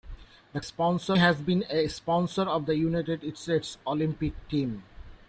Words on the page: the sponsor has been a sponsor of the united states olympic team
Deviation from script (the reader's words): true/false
false